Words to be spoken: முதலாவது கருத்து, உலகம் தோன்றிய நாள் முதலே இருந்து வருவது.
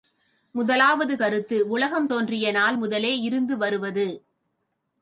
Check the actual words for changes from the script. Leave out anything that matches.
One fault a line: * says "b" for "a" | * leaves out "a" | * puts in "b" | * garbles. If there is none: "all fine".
all fine